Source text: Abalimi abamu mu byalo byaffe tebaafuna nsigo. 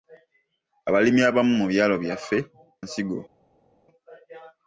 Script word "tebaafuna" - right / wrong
wrong